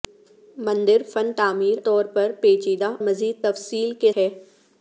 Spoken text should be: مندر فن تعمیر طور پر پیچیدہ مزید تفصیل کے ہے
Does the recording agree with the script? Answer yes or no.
yes